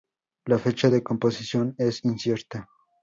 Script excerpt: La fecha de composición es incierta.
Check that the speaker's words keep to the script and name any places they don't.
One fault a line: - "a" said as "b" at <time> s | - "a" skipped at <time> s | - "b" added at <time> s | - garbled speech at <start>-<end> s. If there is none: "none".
none